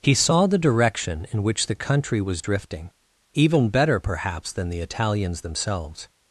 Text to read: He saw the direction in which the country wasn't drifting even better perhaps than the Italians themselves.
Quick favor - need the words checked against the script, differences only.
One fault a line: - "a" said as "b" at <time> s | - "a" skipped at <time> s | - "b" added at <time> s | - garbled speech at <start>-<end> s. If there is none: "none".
- "wasn't" said as "was" at 2.2 s